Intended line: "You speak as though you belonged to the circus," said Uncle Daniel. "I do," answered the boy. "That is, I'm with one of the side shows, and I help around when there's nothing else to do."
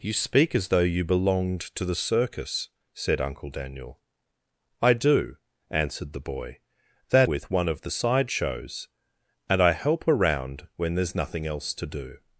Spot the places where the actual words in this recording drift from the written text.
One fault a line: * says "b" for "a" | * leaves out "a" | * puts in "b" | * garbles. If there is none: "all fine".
* leaves out "is I'm"